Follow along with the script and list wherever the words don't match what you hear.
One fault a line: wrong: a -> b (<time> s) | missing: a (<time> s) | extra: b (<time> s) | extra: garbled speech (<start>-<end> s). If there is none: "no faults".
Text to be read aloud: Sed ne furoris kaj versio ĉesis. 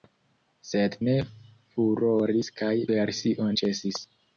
no faults